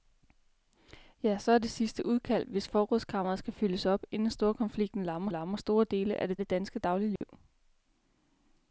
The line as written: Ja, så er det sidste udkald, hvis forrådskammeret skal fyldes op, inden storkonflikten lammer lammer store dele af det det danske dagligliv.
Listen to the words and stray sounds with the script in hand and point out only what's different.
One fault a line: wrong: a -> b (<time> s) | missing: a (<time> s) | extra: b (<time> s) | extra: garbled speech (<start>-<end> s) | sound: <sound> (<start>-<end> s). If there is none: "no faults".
sound: dropout (7.2-7.2 s)